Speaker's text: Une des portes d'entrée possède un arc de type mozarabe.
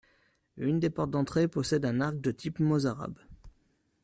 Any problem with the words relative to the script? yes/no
no